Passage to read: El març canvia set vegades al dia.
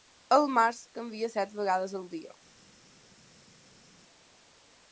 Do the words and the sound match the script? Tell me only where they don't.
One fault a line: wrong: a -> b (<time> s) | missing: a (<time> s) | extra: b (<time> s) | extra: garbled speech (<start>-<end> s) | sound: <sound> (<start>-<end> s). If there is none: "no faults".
no faults